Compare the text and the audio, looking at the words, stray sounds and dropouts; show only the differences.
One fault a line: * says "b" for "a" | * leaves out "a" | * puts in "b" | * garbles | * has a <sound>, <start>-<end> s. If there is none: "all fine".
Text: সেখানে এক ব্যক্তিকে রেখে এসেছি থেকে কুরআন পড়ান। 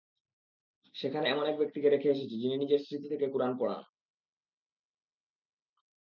* puts in "এমন"
* puts in "যিনি নিজের স্মৃতি"